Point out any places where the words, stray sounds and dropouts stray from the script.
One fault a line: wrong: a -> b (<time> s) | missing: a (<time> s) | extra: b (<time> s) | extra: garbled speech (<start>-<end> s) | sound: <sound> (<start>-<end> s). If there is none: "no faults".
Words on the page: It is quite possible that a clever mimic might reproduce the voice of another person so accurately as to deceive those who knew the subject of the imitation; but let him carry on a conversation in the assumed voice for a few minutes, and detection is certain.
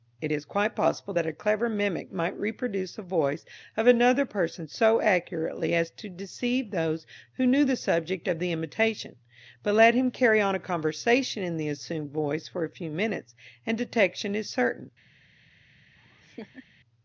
sound: laugh (16.0-16.7 s)